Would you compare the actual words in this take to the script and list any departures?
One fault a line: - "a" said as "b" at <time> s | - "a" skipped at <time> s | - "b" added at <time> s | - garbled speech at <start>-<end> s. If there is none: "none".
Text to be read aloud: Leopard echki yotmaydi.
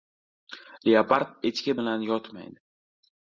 - "bilan" added at 1.8 s